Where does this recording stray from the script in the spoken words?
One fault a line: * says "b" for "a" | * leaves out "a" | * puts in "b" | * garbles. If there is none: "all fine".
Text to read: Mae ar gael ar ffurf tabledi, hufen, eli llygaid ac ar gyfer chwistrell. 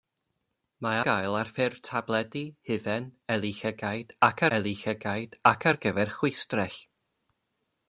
* leaves out "ar"
* puts in "eli llygaid ac"